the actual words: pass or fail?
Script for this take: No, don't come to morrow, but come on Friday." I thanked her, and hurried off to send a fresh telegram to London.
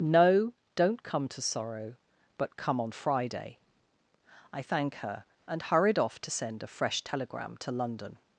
fail